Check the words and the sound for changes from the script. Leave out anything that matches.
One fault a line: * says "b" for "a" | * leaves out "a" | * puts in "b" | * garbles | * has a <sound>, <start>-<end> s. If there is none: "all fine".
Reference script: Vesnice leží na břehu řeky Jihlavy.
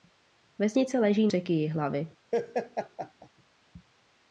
* leaves out "na břehu"
* has a laugh, 2.3-3.3 s